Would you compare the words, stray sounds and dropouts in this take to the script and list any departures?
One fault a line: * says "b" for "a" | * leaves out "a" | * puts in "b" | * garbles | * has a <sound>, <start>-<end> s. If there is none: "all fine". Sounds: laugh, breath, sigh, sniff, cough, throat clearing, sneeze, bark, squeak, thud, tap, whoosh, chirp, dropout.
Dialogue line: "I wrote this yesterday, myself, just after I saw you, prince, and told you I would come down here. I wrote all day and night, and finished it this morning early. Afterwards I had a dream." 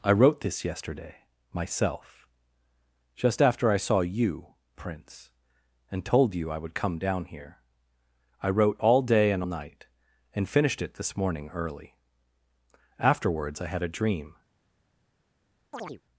* has a chirp, 15.7-16.0 s